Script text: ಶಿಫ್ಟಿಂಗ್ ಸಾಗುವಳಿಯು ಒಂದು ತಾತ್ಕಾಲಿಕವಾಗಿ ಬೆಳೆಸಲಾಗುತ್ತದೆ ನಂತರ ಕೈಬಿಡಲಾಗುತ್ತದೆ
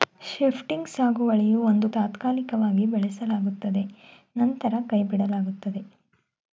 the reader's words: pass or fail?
pass